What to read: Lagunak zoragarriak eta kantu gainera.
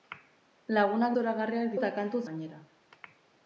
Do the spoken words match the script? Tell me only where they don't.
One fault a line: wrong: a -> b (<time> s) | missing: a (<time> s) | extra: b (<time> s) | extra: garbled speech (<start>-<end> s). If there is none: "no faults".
no faults